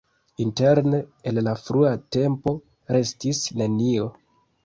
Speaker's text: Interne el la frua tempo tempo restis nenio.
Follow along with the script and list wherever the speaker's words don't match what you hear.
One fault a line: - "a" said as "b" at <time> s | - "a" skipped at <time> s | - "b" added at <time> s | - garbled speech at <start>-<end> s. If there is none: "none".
- "tempo" skipped at 2.5 s